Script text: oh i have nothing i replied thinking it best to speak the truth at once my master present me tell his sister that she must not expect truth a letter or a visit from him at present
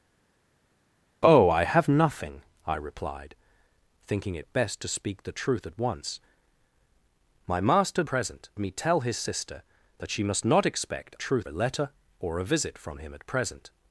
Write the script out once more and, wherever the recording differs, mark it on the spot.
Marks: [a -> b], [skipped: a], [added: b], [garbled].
oh i have nothing i replied thinking it best to speak the truth at once my master present me tell his sister that she must not expect truth a letter or a visit from him at present